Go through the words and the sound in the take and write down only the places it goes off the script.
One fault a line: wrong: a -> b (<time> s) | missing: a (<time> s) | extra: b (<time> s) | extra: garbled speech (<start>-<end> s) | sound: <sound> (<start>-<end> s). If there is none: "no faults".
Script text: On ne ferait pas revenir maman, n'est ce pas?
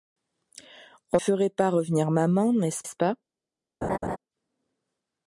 missing: ne (1.2 s)
extra: ce (2.8 s)
sound: laugh (3.8-4.2 s)